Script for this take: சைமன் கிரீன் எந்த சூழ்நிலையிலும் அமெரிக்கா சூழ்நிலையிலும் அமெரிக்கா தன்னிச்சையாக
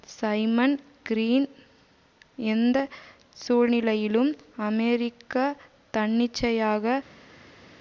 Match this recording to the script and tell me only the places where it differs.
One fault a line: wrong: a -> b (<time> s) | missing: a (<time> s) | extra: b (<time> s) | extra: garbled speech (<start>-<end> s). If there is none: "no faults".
missing: சூழ்நிலையிலும் அமெரிக்கா (5.5 s)